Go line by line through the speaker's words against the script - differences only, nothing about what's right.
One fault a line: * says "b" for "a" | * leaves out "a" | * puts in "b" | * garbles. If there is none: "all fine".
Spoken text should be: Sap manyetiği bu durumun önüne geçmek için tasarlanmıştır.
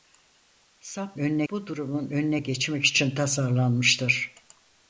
* says "önüne" for "manyetiği"